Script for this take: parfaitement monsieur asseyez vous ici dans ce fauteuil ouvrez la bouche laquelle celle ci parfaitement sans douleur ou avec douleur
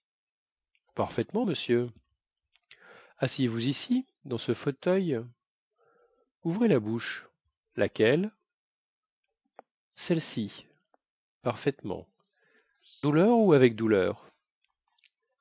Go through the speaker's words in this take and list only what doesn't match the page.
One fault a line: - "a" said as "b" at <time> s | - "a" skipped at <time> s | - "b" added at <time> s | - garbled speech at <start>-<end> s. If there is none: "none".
- "sans" skipped at 12.1 s